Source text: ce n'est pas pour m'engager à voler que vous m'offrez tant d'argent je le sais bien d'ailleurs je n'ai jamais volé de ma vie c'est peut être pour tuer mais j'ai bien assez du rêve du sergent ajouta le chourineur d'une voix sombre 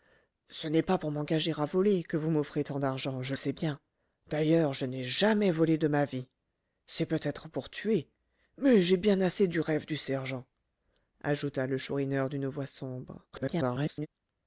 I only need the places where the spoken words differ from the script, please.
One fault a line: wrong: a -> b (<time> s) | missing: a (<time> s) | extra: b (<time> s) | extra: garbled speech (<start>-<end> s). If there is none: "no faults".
missing: le (3.4 s)
extra: garbled speech (13.3-14.1 s)